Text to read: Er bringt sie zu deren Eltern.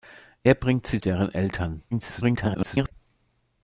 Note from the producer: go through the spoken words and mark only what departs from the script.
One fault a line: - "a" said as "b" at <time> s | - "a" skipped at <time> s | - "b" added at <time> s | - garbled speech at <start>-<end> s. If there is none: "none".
- "zu" skipped at 1.0 s
- garbled speech at 1.9-2.9 s